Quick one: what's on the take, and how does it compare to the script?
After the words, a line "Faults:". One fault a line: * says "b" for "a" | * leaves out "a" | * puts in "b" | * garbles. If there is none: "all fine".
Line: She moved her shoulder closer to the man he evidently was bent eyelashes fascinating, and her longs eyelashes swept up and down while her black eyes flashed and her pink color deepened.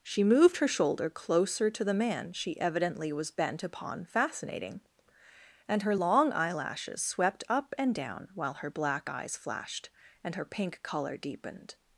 She moved her shoulder closer to the man she evidently was bent upon fascinating, and her long eyelashes swept up and down while her black eyes flashed and her pink color deepened.
Faults:
* says "she" for "he"
* says "upon" for "eyelashes"
* says "long" for "longs"